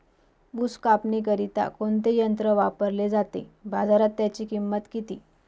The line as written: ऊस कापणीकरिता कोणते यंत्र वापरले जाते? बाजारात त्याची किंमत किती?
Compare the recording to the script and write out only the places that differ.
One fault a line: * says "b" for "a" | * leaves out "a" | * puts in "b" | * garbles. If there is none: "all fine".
all fine